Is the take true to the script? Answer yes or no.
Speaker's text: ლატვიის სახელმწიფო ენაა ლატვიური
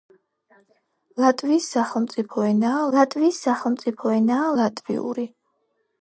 no